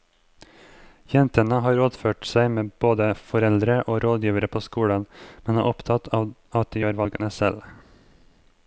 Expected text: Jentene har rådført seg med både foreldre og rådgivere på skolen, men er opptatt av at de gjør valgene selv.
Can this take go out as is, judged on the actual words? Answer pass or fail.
pass